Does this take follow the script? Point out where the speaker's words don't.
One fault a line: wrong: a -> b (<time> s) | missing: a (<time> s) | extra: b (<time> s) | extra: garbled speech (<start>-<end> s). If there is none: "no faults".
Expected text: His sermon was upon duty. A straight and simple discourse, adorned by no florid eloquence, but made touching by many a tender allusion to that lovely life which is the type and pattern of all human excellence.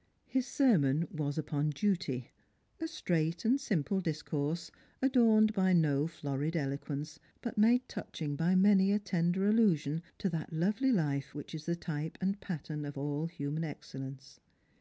no faults